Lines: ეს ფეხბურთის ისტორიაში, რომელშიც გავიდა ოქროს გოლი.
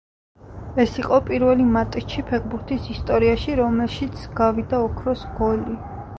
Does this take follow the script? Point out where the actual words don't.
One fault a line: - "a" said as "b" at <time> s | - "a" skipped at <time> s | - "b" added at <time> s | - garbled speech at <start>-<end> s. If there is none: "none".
- "იყო პირველი მატჩი" added at 1.0 s